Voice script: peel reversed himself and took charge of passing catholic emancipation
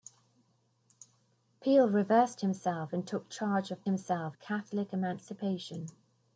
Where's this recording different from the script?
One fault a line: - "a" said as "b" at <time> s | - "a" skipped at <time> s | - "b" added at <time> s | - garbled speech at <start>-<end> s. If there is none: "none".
- "passing" said as "himself" at 3.8 s